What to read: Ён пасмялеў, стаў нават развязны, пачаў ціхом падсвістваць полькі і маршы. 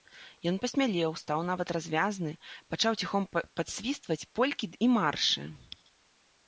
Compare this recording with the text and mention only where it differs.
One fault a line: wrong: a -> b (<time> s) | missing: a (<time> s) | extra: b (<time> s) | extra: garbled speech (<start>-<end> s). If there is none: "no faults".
no faults